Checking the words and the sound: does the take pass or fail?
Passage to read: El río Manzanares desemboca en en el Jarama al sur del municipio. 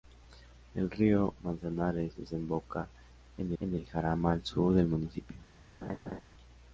fail